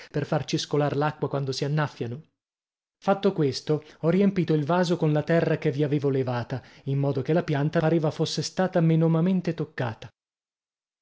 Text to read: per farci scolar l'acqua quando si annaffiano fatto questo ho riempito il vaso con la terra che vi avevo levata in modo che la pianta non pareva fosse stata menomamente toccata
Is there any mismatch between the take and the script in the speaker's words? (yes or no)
yes